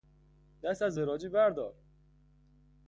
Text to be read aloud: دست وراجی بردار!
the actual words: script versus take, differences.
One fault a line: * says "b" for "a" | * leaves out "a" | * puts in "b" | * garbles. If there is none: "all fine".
* puts in "از"